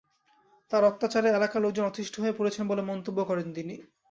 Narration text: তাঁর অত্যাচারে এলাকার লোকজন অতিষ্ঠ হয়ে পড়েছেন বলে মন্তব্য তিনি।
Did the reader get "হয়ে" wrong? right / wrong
right